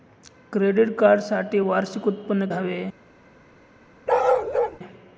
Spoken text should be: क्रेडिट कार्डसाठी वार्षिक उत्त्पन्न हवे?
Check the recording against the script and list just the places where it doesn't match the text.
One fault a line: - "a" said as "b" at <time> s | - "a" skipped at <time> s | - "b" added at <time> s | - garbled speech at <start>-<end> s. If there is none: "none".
none